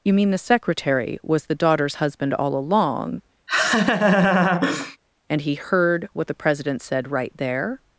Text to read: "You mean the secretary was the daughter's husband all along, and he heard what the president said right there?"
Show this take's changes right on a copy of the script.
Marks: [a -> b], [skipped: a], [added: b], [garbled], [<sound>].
"You mean the secretary was the daughter's husband all along, [laugh] and he heard what the president said right there?"